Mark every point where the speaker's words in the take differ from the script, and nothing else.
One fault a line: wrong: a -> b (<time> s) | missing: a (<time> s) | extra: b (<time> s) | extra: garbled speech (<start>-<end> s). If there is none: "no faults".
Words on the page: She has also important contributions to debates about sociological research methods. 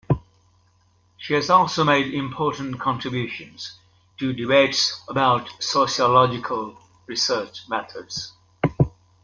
extra: made (1.8 s)